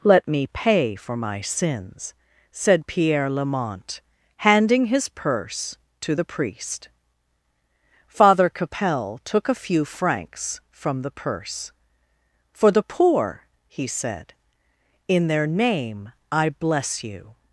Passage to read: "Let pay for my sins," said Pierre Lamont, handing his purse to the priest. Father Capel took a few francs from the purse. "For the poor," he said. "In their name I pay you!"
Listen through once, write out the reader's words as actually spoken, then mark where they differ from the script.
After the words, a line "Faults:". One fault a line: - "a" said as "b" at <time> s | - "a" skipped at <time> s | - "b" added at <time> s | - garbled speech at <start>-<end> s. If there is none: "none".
"Let me pay for my sins," said Pierre Lamont, handing his purse to the priest. Father Capel took a few francs from the purse. "For the poor," he said. "In their name I bless you!"
Faults:
- "me" added at 0.3 s
- "pay" said as "bless" at 16.5 s